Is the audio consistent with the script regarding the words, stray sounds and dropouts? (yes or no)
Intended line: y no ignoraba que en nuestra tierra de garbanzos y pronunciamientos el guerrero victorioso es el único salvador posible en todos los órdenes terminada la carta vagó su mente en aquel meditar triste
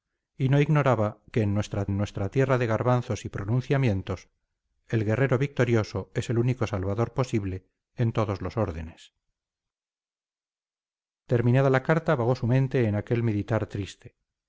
no